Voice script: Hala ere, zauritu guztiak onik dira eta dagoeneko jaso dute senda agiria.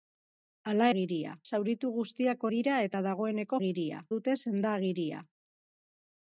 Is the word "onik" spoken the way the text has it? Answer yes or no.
no